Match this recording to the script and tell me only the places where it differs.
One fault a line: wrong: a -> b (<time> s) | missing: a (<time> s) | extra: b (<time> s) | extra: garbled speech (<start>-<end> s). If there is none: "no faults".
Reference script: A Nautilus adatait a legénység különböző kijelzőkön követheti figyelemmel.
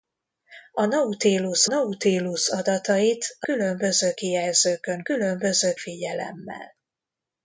extra: Nautilus (1.6 s)
missing: legénység (3.5 s)
wrong: követheti -> különböző (5.0 s)